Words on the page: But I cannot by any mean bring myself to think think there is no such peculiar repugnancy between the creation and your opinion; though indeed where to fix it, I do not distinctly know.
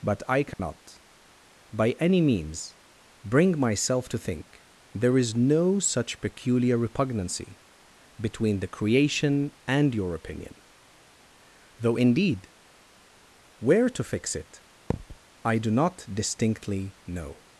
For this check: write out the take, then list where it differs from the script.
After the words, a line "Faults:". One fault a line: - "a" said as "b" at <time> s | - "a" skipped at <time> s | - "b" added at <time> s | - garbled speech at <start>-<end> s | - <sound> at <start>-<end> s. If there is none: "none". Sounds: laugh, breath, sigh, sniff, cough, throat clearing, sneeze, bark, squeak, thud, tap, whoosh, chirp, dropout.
But I cannot by any means bring myself to think there is no such peculiar repugnancy between the creation and your opinion; though indeed where to fix it, I do not distinctly know.
Faults:
- dropout at 0.5-0.6 s
- "mean" said as "means" at 2.2 s
- "think" skipped at 4.6 s
- thud at 14.9-15.2 s